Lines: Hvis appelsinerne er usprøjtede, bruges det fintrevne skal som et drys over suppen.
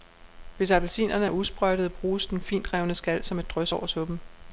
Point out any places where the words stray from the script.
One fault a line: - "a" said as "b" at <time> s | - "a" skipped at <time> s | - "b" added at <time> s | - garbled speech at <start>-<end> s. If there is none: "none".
- "det" said as "den" at 2.3 s